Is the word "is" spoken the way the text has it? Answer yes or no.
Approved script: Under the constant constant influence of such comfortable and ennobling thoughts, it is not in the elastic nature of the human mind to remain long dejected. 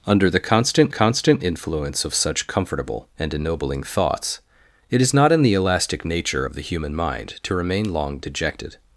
yes